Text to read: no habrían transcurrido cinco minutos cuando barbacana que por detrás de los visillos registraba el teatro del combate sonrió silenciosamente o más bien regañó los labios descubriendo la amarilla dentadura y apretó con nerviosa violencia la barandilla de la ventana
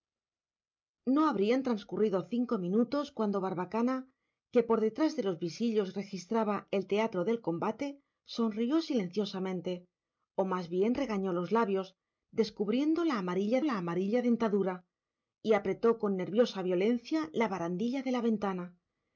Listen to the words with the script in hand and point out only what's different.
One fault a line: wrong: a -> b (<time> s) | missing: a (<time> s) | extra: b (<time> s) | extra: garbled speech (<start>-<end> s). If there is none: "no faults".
extra: la amarilla (13.6 s)